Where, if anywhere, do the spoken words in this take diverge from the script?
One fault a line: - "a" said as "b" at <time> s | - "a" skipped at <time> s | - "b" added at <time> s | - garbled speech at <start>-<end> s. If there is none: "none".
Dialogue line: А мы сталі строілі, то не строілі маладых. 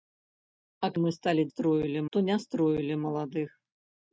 none